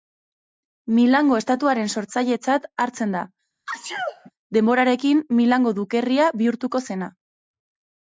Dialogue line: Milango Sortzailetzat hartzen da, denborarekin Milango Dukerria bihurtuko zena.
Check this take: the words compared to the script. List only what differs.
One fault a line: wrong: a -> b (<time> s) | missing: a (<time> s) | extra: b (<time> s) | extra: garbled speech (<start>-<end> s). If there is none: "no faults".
extra: Estatuaren (1.4 s)